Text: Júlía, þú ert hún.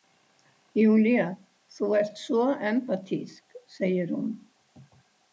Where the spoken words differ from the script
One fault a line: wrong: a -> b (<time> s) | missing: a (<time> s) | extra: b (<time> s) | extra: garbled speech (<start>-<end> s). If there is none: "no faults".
extra: svo empatísk segir (2.2 s)